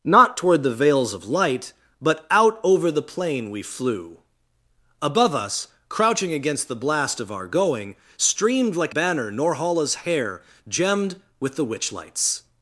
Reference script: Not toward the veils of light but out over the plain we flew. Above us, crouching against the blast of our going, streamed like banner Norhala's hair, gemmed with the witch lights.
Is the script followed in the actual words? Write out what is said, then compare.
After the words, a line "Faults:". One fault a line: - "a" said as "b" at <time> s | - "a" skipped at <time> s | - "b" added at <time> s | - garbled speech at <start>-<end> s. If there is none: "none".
Not toward the veils of light but out over the plain we flew. Above us, crouching against the blast of our going, streamed like banner Norhala's hair, gemmed with the witch lights.
Faults:
none